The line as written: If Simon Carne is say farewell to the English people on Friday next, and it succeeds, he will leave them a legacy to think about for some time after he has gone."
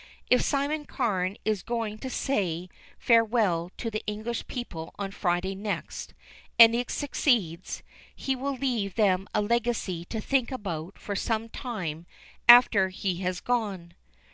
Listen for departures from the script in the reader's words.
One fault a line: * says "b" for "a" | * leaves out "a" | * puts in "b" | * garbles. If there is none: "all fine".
* puts in "going to"